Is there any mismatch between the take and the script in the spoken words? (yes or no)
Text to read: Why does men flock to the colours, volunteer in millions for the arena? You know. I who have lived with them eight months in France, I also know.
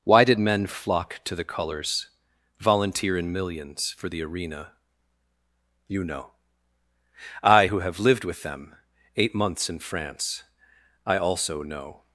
yes